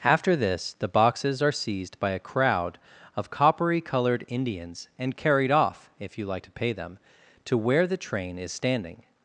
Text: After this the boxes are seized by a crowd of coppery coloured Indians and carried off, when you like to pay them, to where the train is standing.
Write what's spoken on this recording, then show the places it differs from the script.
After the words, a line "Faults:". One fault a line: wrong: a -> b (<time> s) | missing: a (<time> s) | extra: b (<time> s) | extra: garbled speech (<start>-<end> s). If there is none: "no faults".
After this the boxes are seized by a crowd of coppery coloured Indians and carried off, if you like to pay them, to where the train is standing.
Faults:
wrong: when -> if (6.0 s)